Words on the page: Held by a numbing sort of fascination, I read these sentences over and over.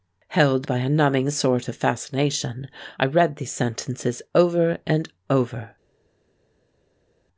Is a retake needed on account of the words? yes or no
no